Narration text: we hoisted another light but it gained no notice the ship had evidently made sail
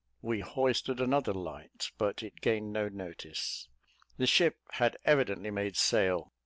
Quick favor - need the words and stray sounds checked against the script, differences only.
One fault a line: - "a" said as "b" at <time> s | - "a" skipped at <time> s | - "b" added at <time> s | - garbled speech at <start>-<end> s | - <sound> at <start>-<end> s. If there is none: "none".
none